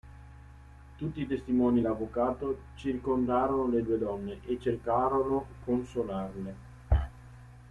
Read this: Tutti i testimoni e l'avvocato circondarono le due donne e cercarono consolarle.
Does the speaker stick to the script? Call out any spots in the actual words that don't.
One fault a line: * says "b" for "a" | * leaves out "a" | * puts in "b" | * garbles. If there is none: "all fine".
all fine